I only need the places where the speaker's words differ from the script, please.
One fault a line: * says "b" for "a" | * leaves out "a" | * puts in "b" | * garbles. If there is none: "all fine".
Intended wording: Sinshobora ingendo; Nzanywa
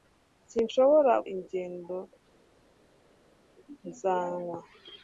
all fine